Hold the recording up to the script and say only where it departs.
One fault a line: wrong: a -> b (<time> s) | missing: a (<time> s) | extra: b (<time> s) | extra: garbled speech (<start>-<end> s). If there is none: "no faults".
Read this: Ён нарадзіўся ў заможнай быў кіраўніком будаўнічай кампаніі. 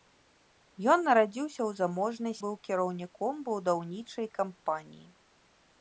no faults